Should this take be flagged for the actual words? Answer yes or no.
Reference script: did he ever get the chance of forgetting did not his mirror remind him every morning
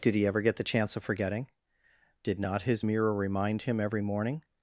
no